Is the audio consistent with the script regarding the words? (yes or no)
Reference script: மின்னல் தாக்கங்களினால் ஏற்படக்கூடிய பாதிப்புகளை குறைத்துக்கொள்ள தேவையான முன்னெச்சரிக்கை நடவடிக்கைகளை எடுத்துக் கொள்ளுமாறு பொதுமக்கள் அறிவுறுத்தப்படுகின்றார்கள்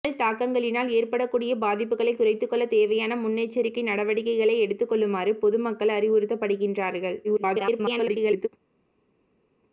no